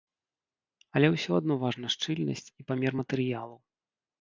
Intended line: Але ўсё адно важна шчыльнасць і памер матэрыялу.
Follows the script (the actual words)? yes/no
yes